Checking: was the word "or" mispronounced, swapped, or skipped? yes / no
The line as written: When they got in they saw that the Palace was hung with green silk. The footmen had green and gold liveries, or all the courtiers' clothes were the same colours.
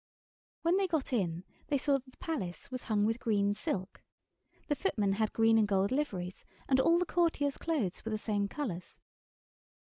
yes